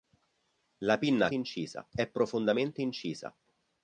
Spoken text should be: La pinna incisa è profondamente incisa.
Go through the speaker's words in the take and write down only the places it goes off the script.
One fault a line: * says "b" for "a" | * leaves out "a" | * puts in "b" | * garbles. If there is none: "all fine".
all fine